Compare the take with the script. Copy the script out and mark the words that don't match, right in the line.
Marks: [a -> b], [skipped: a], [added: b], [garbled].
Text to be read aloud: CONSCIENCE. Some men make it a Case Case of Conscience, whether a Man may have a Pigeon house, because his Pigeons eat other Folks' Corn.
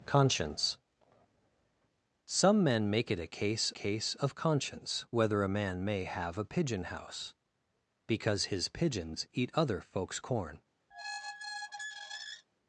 CONSCIENCE. Some men make it a Case Case of Conscience, whether a Man may have a Pigeon house, because his Pigeons eat other Folks' Corn.